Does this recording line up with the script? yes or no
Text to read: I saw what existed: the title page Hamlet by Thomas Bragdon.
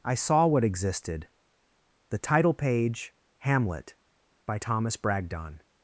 yes